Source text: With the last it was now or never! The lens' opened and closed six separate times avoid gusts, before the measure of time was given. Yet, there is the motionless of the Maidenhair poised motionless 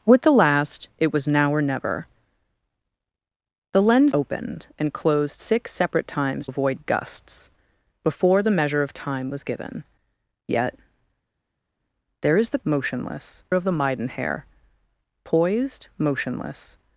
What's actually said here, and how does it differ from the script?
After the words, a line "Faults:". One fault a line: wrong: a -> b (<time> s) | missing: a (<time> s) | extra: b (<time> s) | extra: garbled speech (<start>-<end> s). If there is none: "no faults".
With the last it was now or never! The lens' opened and closed six separate times avoid gusts, before the measure of time was given. Yet, there is the motionless of the Maidenhair poised motionless
Faults:
no faults